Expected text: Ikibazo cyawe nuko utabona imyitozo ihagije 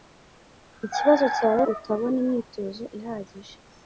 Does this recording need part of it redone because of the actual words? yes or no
yes